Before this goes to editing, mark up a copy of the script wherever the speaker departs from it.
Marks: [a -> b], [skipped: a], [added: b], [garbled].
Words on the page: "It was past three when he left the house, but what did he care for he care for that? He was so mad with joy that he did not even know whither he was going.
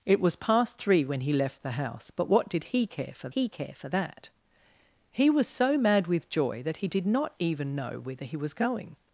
"It was past three when he left the house, but what did he care for he care for that? He was so mad with joy that he did not even know whither he was going.